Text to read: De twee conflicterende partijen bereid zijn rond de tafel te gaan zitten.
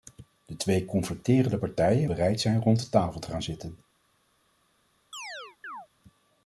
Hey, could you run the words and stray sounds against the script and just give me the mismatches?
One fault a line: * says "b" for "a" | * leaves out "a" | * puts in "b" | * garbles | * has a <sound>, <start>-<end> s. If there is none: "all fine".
* has a chirp, 5.1-5.9 s